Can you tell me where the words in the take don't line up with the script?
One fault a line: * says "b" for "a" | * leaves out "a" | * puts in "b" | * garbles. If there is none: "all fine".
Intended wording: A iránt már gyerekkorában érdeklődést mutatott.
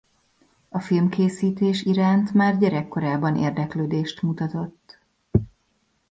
* puts in "filmkészítés"